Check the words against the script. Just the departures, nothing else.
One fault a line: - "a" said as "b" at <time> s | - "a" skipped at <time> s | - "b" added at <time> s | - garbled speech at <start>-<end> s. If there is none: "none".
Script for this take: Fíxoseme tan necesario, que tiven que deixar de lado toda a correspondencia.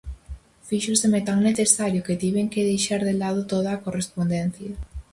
none